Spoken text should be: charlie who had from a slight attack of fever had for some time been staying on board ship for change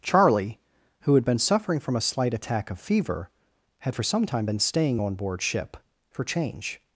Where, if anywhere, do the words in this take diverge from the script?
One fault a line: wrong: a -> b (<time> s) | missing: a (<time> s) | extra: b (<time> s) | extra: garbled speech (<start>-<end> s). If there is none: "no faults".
extra: been suffering (1.2 s)